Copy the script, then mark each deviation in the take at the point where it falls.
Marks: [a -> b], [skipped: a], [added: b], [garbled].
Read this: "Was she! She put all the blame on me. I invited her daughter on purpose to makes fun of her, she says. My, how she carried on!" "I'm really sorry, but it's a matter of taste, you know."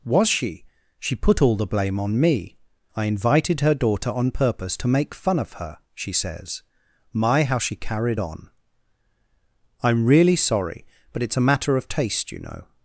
"Was she! She put all the blame on me. I invited her daughter on purpose to [makes -> make] fun of her, she says. My, how she carried on!" "I'm really sorry, but it's a matter of taste, you know."